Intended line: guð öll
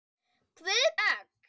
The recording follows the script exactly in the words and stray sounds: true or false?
true